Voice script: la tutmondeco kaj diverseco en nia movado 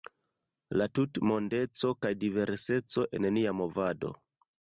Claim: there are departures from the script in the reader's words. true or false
false